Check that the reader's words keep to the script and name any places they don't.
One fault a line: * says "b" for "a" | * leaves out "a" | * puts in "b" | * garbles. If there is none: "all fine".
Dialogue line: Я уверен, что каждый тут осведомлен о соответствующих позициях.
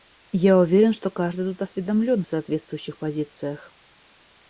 all fine